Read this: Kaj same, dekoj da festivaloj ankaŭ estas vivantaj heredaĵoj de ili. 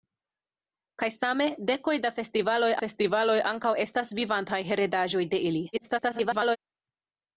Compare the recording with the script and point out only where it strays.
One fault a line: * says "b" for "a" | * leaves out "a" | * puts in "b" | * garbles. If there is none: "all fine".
* puts in "festivaloj"
* garbles